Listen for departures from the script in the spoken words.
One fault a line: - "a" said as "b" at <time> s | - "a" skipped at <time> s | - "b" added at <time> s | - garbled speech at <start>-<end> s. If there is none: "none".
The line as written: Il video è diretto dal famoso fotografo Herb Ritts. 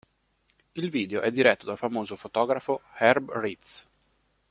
none